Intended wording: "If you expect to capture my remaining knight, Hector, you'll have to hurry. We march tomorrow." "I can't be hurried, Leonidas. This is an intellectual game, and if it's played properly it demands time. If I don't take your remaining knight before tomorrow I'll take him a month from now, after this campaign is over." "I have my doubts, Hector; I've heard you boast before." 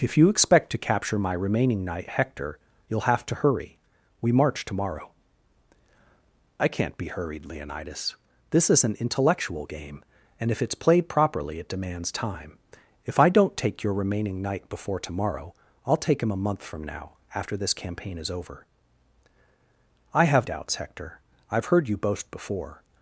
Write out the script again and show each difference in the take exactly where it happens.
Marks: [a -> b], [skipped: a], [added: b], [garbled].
"If you expect to capture my remaining knight, Hector, you'll have to hurry. We march tomorrow." "I can't be hurried, Leonidas. This is an intellectual game, and if it's played properly it demands time. If I don't take your remaining knight before tomorrow I'll take him a month from now, after this campaign is over." "I have [skipped: my] doubts, Hector; I've heard you boast before."